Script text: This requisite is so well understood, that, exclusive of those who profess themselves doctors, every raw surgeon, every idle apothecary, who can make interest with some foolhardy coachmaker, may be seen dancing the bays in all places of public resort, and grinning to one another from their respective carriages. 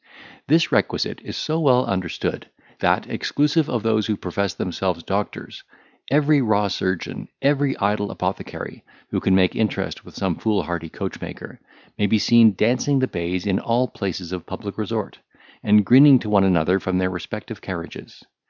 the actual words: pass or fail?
pass